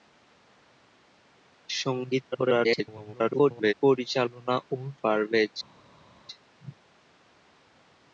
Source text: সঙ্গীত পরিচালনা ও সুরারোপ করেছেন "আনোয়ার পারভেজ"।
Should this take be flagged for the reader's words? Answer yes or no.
yes